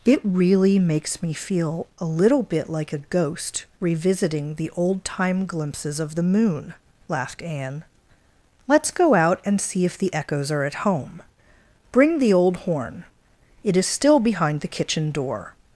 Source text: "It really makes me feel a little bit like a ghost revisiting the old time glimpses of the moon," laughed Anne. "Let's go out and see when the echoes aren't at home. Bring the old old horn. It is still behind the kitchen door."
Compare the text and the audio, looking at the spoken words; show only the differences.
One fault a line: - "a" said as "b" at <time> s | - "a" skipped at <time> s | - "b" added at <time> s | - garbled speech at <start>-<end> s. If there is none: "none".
- "when" said as "if" at 9.8 s
- "aren't" said as "are" at 10.5 s
- "old" skipped at 12.6 s